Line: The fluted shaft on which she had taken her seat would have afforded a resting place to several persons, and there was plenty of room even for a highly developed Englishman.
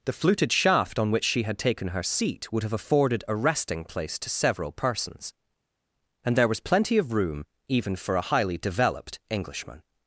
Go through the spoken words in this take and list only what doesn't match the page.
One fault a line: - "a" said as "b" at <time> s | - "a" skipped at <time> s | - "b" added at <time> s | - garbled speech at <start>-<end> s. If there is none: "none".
none